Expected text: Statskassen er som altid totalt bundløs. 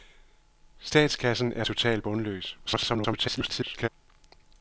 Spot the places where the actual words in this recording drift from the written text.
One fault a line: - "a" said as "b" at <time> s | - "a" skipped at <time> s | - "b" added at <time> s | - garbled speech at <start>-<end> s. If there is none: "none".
- "som altid" skipped at 1.6 s
- garbled speech at 2.7-3.9 s